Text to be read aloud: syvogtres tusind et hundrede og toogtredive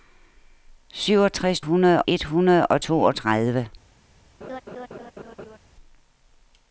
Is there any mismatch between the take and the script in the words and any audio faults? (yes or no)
yes